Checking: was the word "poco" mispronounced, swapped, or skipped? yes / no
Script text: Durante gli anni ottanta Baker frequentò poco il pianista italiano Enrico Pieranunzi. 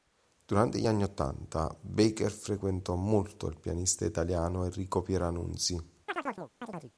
yes